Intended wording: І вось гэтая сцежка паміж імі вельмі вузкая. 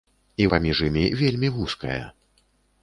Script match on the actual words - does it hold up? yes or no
no